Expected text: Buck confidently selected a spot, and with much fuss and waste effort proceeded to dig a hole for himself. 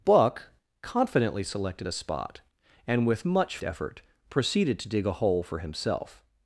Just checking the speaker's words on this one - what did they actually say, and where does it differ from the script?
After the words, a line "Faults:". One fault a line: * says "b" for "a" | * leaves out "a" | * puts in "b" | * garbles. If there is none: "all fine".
Buck confidently selected a spot, and with much effort proceeded to dig a hole for himself.
Faults:
* leaves out "fuss and waste"